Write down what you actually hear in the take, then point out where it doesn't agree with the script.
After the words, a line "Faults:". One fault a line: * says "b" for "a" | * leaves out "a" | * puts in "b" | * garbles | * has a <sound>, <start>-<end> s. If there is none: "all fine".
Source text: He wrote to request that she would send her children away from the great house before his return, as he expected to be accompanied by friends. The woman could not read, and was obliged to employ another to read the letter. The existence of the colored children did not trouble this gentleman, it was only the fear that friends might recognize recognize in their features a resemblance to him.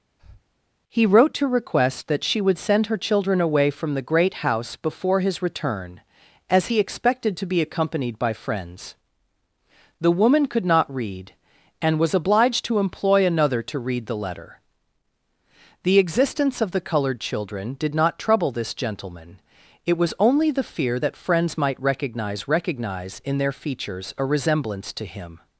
He wrote to request that she would send her children away from the great house before his return, as he expected to be accompanied by friends. The woman could not read, and was obliged to employ another to read the letter. The existence of the colored children did not trouble this gentleman, it was only the fear that friends might recognize recognize in their features a resemblance to him.
Faults:
* has a breath, 0.2-0.4 s